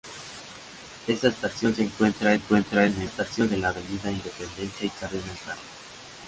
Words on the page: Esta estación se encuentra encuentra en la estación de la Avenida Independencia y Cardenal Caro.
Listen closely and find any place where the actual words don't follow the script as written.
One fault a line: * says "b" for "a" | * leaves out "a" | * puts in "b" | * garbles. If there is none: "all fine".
all fine